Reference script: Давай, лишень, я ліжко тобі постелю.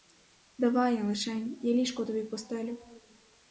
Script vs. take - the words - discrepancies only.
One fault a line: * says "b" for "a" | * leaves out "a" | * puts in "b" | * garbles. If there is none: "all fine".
all fine